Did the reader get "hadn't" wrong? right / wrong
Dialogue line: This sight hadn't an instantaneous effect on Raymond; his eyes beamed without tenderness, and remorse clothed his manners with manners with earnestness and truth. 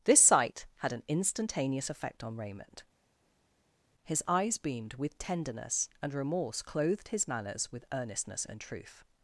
wrong